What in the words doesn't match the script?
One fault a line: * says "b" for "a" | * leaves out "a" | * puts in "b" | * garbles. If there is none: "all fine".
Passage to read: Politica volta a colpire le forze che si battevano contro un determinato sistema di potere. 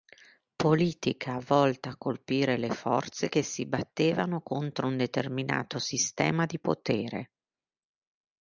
all fine